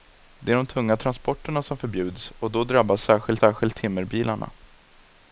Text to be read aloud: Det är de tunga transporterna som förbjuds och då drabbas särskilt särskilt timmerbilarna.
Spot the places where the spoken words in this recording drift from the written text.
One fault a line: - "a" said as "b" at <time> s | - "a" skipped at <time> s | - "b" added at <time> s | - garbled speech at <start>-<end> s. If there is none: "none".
none